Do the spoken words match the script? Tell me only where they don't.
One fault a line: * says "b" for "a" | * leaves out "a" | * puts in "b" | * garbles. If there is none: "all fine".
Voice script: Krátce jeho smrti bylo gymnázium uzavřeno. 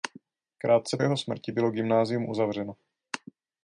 all fine